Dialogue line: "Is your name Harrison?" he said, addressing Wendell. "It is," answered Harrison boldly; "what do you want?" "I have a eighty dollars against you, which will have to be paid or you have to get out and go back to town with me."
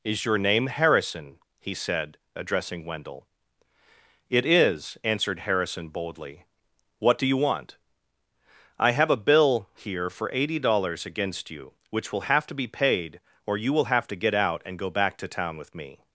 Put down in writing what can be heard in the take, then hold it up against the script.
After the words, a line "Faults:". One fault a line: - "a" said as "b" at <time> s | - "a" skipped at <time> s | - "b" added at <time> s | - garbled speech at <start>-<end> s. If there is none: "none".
"Is your name Harrison?" he said, addressing Wendell. "It is," answered Harrison boldly; "what do you want?" "I have a bill here for eighty dollars against you, which will have to be paid or you will have to get out and go back to town with me."
Faults:
- "bill here for" added at 9.2 s
- "will" added at 13.7 s